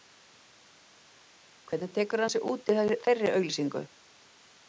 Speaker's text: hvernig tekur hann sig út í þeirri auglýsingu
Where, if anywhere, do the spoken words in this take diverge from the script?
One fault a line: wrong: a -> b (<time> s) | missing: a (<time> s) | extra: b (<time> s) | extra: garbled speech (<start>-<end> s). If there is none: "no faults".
no faults